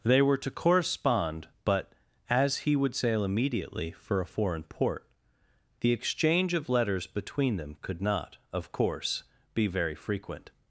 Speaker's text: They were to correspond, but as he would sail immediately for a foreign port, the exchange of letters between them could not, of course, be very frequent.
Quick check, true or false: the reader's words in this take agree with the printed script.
true